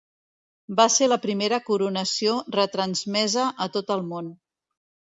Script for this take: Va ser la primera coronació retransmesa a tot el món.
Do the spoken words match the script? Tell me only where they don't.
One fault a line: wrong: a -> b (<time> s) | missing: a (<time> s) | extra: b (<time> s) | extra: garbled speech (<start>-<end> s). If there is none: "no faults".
no faults